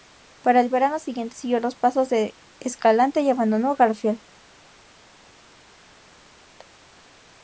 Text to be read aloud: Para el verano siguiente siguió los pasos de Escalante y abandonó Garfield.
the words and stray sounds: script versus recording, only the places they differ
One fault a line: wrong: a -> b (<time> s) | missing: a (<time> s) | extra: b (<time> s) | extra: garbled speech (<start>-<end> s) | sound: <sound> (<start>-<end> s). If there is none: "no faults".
no faults